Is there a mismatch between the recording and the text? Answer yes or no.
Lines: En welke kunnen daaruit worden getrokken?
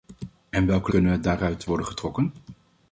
no